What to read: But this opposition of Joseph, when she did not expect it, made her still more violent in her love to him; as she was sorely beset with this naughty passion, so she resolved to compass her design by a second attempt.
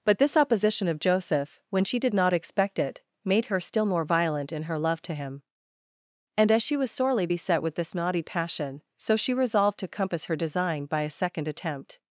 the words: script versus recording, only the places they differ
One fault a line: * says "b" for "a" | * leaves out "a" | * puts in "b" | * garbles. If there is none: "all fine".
* puts in "and"